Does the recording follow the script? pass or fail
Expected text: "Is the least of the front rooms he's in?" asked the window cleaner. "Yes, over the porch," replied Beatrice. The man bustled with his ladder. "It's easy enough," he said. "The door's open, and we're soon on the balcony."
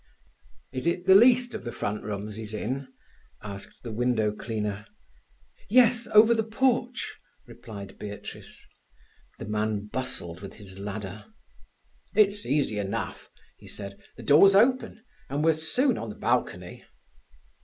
fail